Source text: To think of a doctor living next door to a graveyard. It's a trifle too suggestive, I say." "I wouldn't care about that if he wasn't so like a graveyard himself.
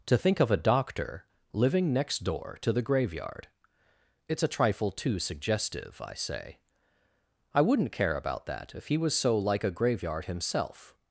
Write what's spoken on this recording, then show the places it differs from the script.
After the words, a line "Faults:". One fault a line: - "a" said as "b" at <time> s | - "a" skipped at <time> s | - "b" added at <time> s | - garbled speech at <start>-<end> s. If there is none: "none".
To think of a doctor living next door to the graveyard. It's a trifle too suggestive, I say." "I wouldn't care about that if he was so like a graveyard himself.
Faults:
- "a" said as "the" at 2.7 s
- "wasn't" said as "was" at 9.0 s